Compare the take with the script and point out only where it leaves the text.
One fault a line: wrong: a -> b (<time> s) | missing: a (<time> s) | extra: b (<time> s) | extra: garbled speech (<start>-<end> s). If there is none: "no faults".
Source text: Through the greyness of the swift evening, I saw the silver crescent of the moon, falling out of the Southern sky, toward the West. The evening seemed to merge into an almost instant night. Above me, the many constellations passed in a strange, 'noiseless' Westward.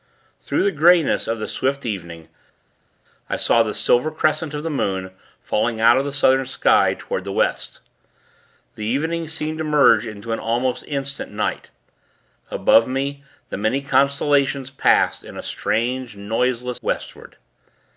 no faults